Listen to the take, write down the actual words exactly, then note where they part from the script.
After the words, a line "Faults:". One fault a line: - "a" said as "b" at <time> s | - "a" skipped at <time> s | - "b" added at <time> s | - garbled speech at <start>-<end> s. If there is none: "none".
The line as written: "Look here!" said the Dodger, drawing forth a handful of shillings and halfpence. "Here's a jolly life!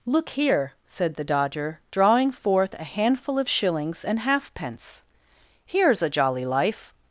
"Look here!" said the Dodger, drawing forth a handful of shillings and halfpence. "Here's a jolly life!
Faults:
none